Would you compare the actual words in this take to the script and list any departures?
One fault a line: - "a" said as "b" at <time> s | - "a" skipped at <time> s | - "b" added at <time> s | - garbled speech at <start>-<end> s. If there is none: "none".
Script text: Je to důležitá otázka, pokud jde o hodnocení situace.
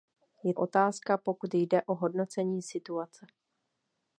- "to důležitá" skipped at 0.5 s